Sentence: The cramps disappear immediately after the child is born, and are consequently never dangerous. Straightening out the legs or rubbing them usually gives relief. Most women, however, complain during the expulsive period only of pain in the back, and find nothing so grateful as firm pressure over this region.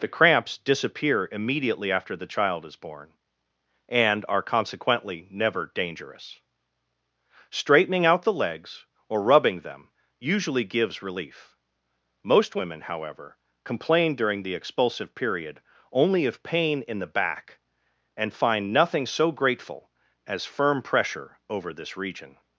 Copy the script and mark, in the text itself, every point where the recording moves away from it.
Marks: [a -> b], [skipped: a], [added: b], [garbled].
The cramps disappear immediately after the child is born, and are consequently never dangerous. Straightening out the legs or rubbing them usually gives relief. Most women, however, complain during the expulsive period only of pain in the back, and find nothing so grateful as firm pressure over this region.